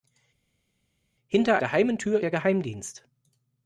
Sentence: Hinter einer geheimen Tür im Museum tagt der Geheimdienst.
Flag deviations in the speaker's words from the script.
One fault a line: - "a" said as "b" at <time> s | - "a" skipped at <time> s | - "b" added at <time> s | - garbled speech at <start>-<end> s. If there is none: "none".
- "einer" skipped at 1.6 s
- "im Museum tagt" skipped at 2.2 s